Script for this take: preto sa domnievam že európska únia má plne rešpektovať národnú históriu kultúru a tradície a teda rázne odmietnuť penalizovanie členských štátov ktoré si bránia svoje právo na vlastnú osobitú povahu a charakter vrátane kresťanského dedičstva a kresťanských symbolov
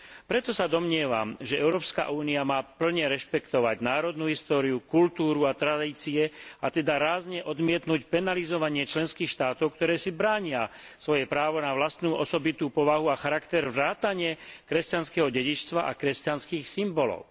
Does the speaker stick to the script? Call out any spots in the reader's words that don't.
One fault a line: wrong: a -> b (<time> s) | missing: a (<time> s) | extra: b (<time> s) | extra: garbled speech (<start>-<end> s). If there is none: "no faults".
no faults